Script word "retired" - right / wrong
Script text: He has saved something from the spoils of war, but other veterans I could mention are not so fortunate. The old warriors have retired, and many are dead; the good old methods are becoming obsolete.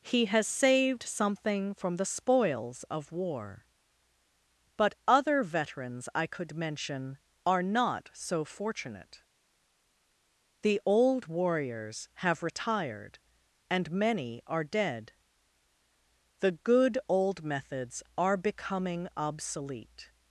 right